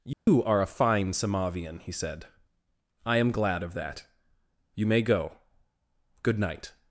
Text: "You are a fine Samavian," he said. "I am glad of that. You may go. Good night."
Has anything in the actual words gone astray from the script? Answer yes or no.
no